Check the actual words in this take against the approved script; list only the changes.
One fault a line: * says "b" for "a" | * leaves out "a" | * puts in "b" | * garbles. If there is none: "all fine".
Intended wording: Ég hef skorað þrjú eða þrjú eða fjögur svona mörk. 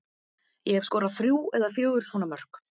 * leaves out "þrjú eða"